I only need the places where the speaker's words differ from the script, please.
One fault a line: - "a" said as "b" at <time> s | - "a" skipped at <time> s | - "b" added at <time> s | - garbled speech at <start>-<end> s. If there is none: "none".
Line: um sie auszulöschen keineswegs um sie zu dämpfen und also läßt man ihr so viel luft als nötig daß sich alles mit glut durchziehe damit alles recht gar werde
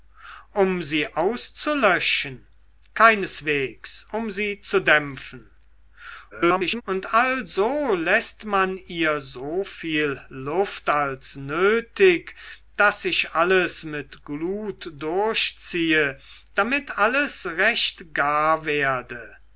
- garbled speech at 6.3-6.8 s